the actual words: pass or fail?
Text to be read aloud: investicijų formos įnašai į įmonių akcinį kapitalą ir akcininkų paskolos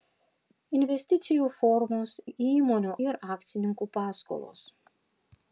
fail